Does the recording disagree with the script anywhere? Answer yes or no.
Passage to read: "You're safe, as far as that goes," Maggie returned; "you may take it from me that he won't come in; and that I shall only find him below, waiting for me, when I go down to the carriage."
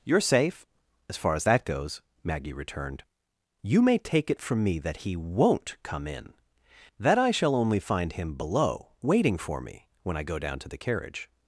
yes